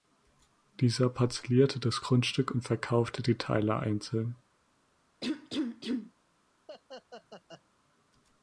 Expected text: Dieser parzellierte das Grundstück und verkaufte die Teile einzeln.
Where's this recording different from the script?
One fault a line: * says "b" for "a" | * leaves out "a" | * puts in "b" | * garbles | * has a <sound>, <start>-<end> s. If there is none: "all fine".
* has a cough, 5.2-6.1 s
* has a laugh, 6.7-7.6 s